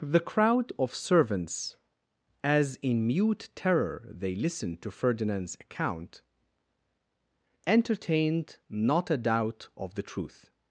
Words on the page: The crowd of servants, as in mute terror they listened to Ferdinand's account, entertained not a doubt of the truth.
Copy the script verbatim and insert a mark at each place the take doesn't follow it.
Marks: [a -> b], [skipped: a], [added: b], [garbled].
The crowd of servants, as in mute terror they listened to Ferdinand's account, entertained not a doubt of the truth.